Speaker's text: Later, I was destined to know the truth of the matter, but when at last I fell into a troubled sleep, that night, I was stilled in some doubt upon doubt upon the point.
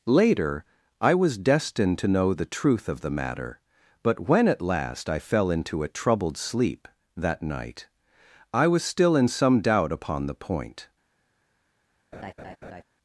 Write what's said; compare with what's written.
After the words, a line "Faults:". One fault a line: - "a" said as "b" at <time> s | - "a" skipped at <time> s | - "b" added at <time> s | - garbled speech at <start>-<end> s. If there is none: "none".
Later, I was destined to know the truth of the matter, but when at last I fell into a troubled sleep, that night, I was still in some doubt upon the point.
Faults:
- "stilled" said as "still" at 8.8 s
- "doubt upon" skipped at 10.3 s